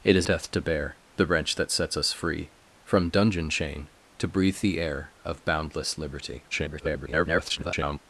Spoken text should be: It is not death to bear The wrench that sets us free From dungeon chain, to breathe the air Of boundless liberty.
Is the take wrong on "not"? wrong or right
wrong